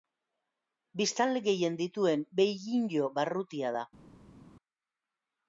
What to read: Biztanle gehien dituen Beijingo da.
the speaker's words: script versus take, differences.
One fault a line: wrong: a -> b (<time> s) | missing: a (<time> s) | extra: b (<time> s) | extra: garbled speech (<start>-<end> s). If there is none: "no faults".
extra: barrutia (3.2 s)